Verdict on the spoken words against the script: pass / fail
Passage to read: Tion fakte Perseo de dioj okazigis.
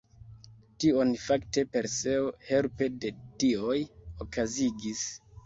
fail